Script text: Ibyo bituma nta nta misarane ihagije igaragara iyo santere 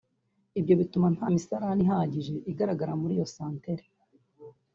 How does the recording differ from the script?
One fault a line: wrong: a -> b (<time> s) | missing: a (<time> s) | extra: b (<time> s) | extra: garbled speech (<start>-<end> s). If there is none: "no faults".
missing: nta (1.3 s)
extra: muri (3.0 s)